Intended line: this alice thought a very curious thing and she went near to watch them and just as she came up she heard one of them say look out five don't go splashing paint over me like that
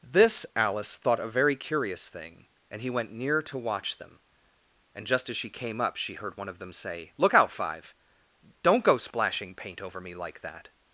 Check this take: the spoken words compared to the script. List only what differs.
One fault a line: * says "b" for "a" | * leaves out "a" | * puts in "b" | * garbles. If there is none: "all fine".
* says "he" for "she"